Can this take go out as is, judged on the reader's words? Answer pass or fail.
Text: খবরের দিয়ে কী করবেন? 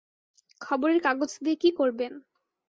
fail